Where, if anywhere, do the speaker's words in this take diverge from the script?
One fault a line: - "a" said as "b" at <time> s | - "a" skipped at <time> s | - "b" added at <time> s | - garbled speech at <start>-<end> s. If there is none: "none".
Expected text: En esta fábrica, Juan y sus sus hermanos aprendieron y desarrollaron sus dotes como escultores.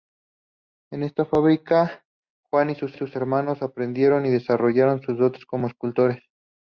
none